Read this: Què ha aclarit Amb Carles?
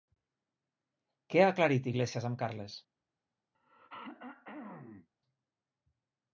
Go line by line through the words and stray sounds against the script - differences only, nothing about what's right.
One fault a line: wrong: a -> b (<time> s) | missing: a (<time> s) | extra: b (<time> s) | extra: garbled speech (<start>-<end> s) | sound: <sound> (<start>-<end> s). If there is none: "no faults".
extra: Iglesias (1.9 s)
sound: throat clearing (3.5-5.1 s)